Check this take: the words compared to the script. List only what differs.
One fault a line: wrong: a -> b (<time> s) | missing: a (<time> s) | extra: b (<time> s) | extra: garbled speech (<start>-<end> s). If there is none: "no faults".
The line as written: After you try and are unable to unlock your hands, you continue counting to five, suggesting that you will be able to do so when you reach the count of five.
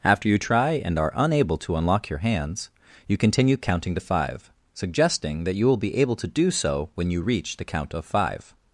no faults